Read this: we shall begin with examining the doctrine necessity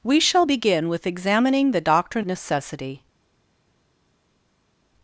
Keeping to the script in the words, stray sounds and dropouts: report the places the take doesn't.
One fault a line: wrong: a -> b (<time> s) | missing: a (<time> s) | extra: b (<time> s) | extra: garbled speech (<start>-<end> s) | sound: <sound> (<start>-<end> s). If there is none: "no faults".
no faults